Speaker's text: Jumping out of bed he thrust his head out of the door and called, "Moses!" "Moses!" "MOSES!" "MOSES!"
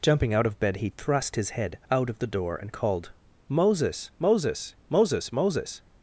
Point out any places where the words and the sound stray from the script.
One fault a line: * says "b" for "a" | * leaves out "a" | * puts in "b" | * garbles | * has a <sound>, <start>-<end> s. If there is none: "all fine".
all fine